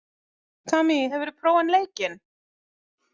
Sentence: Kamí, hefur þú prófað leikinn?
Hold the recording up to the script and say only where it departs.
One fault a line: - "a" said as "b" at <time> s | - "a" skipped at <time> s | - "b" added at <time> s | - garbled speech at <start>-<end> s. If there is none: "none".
none